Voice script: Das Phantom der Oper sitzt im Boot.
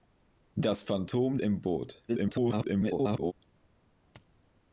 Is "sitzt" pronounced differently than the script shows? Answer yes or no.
yes